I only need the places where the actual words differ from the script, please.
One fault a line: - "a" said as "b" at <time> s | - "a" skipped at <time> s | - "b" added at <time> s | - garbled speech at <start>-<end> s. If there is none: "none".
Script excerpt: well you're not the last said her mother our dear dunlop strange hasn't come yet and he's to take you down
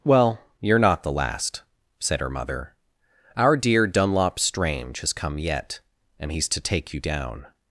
- "hasn't" said as "has" at 5.0 s